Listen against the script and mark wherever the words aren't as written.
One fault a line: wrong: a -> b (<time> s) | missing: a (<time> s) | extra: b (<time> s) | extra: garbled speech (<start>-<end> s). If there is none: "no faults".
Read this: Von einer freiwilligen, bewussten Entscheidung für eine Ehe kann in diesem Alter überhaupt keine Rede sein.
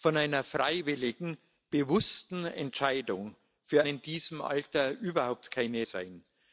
missing: eine Ehe kann (3.9 s)
missing: Rede (5.9 s)